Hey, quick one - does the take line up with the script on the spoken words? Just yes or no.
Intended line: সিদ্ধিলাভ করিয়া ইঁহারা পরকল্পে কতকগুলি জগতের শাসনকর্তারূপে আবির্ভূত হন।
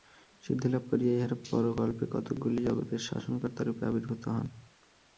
yes